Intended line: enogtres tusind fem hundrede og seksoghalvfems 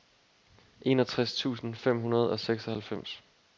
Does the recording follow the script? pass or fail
pass